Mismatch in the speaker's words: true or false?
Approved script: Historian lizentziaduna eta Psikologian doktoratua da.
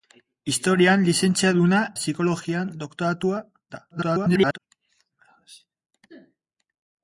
true